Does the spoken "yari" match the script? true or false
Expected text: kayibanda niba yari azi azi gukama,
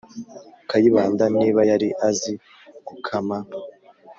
true